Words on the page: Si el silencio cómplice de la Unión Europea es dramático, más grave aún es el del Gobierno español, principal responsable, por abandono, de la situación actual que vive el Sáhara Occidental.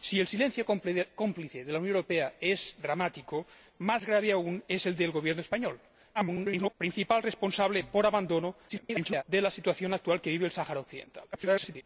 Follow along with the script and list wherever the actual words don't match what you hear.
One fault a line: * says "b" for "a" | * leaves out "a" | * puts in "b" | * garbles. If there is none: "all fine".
* garbles
* garbles
* garbles